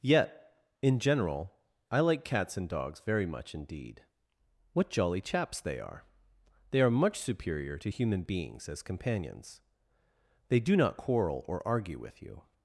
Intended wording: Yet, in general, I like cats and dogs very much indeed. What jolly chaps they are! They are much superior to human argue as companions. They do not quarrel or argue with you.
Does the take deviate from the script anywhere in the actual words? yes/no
yes